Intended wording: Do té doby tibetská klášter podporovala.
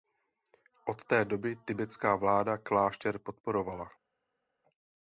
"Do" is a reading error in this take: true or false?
true